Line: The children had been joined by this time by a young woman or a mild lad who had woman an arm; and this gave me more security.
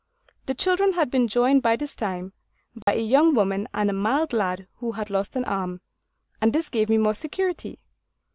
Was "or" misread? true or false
true